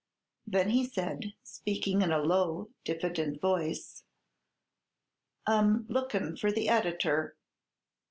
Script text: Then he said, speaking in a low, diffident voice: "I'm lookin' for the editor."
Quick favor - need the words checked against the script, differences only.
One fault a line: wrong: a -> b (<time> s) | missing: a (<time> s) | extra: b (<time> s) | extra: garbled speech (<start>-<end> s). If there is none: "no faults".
no faults